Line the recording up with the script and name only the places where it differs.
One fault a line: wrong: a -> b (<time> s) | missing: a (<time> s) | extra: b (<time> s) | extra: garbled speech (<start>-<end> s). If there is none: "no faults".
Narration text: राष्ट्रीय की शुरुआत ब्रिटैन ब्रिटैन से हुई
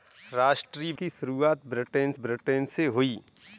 no faults